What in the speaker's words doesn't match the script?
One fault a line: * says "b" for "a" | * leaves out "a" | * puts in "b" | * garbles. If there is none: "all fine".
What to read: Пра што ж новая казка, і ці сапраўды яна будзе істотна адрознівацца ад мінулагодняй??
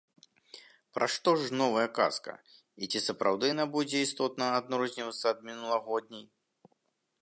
all fine